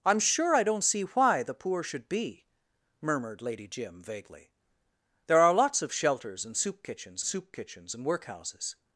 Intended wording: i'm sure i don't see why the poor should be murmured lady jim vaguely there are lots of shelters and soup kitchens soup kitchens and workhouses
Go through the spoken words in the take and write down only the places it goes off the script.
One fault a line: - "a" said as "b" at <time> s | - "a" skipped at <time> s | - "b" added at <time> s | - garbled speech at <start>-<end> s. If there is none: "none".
none